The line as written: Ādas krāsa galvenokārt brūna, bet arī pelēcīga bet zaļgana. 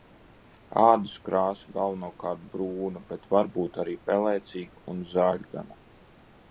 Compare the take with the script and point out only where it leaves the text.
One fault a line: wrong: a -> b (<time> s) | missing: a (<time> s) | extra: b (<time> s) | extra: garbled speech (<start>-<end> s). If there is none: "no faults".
extra: var būt (3.4 s)
wrong: bet -> un (4.9 s)